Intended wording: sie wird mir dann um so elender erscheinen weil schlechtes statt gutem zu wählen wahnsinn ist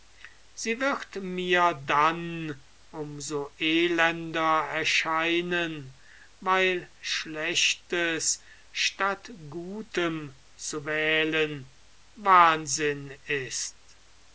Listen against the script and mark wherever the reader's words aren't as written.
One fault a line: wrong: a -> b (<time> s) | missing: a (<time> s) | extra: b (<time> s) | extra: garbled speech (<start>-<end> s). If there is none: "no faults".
no faults